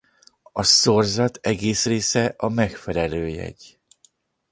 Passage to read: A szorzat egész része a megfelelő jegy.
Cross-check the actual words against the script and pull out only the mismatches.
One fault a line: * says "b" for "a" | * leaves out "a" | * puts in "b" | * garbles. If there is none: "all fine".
all fine